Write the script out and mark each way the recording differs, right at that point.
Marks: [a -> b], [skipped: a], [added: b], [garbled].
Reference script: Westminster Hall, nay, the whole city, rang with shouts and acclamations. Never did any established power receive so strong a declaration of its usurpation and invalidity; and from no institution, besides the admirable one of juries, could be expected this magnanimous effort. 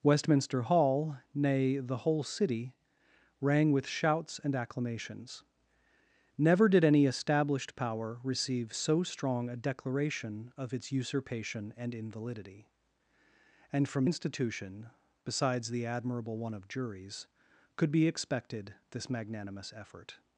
Westminster Hall, nay, the whole city, rang with shouts and acclamations. Never did any established power receive so strong a declaration of its usurpation and invalidity; and from [skipped: no] institution, besides the admirable one of juries, could be expected this magnanimous effort.